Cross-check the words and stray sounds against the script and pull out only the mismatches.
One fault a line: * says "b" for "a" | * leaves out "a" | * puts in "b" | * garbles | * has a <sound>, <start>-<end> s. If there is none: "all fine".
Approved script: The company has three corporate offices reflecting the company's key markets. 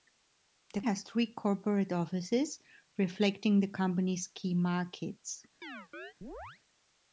* leaves out "company"
* has a chirp, 5.6-6.6 s